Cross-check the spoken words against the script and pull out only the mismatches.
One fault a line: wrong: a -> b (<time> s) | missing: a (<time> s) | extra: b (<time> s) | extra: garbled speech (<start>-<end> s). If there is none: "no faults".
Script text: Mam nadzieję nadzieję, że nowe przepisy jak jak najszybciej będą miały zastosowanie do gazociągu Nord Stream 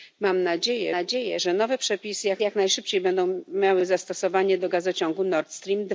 no faults